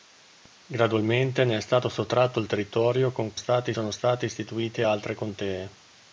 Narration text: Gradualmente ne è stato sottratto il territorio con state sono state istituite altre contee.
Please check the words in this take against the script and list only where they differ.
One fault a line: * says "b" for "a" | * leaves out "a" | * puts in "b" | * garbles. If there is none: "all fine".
all fine